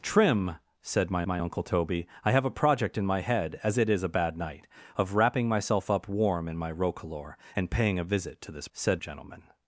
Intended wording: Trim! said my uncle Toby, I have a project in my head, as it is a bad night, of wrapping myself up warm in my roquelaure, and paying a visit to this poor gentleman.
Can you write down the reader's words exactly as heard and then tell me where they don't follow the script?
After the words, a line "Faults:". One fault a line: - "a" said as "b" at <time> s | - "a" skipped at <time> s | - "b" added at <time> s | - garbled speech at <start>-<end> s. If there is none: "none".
Trim! said my my uncle Toby, I have a project in my head, as it is a bad night, of wrapping myself up warm in my roquelaure, and paying a visit to this said gentleman.
Faults:
- "my" added at 1.3 s
- "poor" said as "said" at 8.7 s